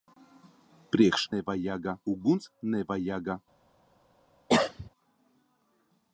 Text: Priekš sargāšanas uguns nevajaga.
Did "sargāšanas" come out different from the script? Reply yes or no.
yes